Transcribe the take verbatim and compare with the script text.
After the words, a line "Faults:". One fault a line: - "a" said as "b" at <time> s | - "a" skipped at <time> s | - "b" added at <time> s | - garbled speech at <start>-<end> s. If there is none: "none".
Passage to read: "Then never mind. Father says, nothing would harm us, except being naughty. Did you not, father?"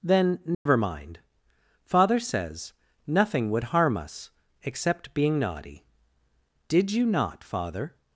"Then never mind. Father says, nothing would harm us, except being naughty. Did you not, father?"
Faults:
none